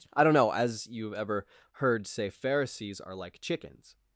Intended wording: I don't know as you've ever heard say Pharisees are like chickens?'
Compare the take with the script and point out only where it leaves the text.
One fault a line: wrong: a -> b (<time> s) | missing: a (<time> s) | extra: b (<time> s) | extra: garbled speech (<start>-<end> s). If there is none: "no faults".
no faults